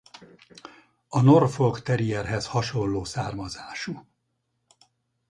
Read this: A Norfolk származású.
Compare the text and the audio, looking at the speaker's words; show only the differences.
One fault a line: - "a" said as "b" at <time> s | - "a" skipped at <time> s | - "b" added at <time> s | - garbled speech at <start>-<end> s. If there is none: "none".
- "terrierhez hasonló" added at 1.8 s